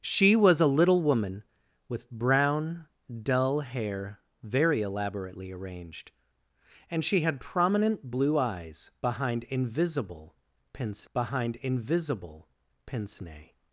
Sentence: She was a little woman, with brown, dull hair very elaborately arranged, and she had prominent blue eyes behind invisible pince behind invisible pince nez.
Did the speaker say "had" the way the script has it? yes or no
yes